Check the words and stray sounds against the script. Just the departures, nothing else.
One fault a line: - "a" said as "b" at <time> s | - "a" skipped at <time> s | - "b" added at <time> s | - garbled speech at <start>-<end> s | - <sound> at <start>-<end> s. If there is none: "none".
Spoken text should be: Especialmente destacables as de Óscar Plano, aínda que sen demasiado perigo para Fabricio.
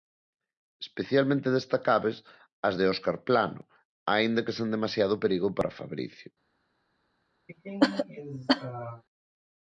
- cough at 7.5-9.0 s